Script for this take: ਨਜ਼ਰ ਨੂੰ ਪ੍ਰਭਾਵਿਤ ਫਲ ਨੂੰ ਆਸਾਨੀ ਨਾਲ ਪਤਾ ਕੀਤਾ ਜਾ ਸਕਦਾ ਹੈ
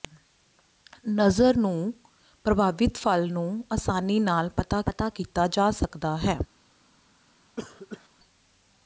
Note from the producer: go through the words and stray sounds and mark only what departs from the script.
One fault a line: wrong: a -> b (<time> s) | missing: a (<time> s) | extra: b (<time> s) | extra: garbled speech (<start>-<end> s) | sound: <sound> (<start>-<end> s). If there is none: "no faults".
extra: ਪਤਾ (4.9 s)
sound: cough (7.6-8.1 s)